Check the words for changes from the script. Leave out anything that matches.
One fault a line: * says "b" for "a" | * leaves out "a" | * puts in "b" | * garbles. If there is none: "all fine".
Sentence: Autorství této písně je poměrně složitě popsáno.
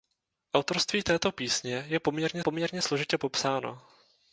* puts in "poměrně"